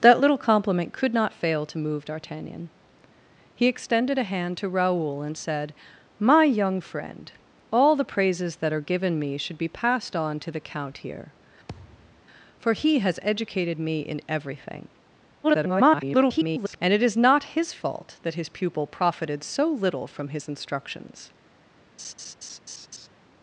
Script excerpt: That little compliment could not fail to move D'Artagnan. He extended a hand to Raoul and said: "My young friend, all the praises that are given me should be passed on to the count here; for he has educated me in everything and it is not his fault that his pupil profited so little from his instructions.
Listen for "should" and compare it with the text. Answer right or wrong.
right